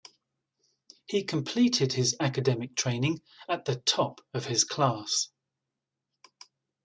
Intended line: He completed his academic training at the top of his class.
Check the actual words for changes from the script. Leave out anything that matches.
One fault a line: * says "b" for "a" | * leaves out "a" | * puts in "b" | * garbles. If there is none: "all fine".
all fine